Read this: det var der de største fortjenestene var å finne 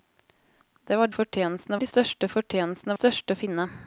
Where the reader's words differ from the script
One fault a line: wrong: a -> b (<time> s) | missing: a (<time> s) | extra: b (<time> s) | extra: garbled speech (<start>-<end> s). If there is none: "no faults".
wrong: der -> fortjenestene (1.1 s)
wrong: var -> største (2.9 s)